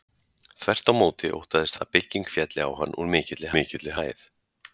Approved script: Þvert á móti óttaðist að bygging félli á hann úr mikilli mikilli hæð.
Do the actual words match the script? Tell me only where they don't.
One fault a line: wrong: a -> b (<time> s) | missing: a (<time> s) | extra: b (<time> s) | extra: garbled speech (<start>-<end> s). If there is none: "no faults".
no faults